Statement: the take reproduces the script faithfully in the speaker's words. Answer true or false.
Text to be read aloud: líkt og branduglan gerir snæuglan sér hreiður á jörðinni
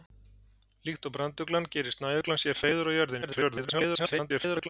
false